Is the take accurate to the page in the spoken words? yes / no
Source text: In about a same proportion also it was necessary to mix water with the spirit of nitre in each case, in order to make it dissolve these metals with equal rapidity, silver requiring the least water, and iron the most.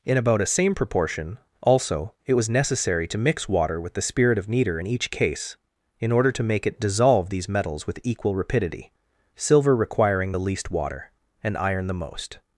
yes